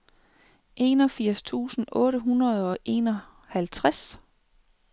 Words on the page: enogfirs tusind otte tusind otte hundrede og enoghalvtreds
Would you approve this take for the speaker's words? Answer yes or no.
no